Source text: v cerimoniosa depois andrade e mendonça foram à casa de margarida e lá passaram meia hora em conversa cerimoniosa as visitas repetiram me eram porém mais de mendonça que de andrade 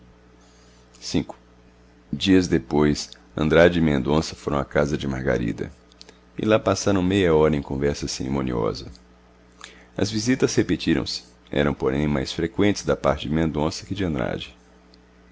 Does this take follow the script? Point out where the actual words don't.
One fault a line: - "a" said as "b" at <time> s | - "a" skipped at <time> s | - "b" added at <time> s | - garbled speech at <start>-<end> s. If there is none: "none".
- "cerimoniosa" said as "dias" at 2.1 s
- "me" said as "se" at 11.0 s
- "freqüentes da parte" added at 12.3 s